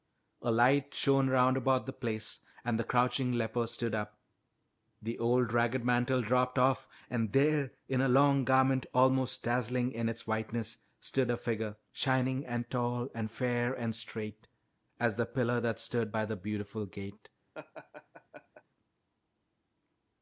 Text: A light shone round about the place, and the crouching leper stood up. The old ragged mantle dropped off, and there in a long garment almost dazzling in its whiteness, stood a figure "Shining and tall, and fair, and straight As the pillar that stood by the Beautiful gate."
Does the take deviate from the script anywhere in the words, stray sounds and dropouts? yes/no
yes